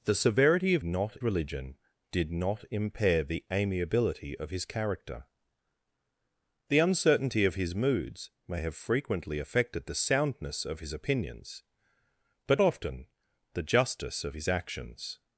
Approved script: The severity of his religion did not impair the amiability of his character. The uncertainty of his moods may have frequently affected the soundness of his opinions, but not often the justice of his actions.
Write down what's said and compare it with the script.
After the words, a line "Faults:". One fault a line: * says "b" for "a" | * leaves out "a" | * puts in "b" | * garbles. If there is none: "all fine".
The severity of not religion did not impair the amiability of his character. The uncertainty of his moods may have frequently affected the soundness of his opinions, but often the justice of his actions.
Faults:
* says "not" for "his"
* leaves out "not"